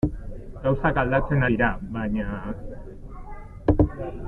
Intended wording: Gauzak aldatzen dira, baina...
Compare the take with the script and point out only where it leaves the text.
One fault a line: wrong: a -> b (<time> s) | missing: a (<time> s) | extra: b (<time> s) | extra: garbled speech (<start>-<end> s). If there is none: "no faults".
no faults